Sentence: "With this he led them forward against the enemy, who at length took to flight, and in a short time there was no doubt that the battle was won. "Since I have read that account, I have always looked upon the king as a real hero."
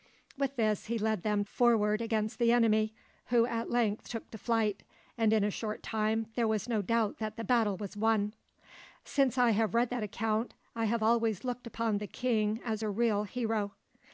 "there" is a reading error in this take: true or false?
false